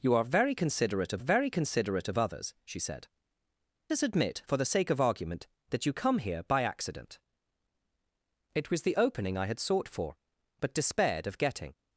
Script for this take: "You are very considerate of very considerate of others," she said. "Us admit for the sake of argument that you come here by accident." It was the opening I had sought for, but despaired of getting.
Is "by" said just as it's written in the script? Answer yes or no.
yes